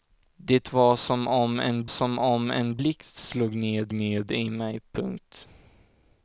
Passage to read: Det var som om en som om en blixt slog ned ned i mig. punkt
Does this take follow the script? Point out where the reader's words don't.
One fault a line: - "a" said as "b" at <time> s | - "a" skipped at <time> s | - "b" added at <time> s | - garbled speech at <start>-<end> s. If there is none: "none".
none